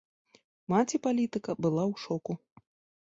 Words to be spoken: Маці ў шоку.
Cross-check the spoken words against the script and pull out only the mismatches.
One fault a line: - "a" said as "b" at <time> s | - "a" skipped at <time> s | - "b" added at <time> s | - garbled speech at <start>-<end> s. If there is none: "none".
- "палітыка была" added at 1.1 s